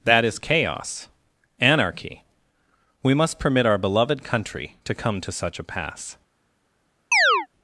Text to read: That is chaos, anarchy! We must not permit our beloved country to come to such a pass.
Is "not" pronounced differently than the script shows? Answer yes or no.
yes